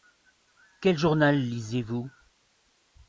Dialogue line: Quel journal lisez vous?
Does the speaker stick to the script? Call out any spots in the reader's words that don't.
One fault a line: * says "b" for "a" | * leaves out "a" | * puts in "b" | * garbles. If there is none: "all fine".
all fine